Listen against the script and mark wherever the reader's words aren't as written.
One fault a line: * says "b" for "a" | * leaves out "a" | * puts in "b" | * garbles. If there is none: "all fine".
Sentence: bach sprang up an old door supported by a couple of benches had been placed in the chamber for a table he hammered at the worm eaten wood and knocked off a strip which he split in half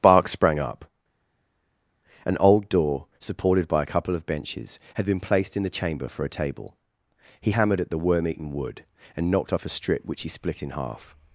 * says "bark" for "bach"